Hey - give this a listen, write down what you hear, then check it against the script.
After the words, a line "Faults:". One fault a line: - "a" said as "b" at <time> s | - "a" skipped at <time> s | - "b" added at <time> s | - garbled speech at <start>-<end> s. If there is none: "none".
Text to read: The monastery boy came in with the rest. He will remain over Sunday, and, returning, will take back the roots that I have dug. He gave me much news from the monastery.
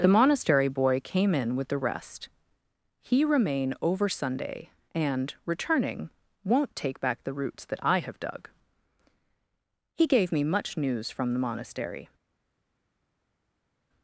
The monastery boy came in with the rest. He remain over Sunday, and, returning, won't take back the roots that I have dug. He gave me much news from the monastery.
Faults:
- "will" skipped at 3.2 s
- "will" said as "won't" at 6.4 s